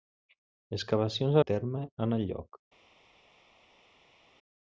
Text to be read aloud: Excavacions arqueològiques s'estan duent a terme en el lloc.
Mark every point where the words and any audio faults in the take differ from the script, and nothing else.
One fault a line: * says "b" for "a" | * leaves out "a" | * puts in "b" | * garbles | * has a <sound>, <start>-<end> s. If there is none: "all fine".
* leaves out "arqueològiques s'estan duent"